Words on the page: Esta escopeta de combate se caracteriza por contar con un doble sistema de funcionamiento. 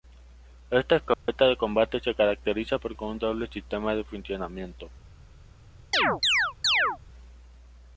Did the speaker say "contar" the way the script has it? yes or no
no